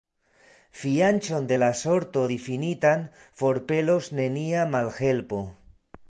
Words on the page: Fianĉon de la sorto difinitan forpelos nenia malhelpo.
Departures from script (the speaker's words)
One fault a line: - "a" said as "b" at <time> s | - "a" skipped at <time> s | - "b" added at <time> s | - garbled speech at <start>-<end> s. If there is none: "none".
none